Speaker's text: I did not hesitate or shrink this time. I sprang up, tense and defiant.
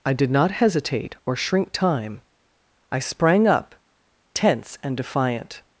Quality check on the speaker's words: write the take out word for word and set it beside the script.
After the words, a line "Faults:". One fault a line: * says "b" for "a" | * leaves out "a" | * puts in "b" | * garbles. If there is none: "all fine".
I did not hesitate or shrink time. I sprang up, tense and defiant.
Faults:
* leaves out "this"